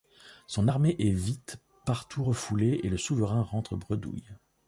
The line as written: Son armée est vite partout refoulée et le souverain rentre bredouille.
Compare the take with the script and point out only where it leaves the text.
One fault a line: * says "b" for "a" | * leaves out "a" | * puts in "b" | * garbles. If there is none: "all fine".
all fine